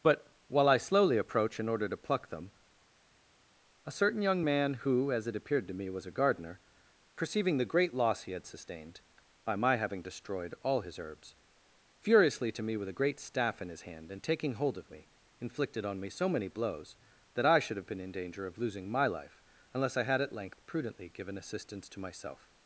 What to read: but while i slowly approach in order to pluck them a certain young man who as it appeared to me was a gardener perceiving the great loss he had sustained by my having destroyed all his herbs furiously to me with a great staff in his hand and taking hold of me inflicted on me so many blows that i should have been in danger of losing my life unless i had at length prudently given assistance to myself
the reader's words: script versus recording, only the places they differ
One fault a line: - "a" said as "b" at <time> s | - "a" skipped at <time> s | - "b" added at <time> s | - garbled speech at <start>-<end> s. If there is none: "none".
none